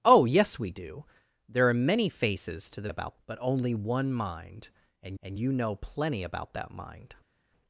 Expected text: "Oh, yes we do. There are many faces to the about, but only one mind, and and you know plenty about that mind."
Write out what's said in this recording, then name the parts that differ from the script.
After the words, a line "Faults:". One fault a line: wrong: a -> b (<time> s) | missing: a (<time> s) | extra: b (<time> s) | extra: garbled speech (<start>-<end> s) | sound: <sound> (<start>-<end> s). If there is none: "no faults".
"Oh, yes we do. There are many faces to the about, but only one mind, and and you know plenty about that mind."
Faults:
no faults